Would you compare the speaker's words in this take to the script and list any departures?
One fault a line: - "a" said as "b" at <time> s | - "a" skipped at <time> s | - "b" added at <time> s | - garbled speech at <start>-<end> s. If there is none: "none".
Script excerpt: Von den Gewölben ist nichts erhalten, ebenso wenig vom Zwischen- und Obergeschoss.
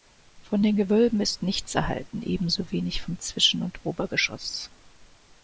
none